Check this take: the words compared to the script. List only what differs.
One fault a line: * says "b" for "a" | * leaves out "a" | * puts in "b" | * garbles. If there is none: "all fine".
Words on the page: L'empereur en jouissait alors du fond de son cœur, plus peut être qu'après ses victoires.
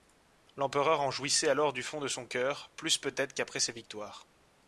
all fine